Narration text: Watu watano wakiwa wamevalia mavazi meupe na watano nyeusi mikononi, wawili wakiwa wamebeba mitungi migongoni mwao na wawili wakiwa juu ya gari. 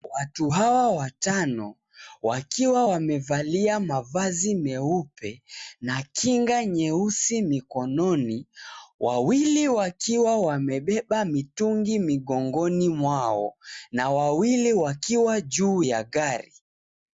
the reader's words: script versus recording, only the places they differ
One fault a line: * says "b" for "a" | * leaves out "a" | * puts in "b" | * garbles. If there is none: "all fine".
* puts in "hawa"
* says "kinga" for "watano"